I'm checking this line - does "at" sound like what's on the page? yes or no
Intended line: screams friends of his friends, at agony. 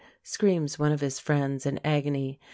no